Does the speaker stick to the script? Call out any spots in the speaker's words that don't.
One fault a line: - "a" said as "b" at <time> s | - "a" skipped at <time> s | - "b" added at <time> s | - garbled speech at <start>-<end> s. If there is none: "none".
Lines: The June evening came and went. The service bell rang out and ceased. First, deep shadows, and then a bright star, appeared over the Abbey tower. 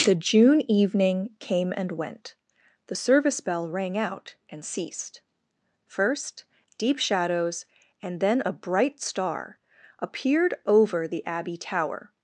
none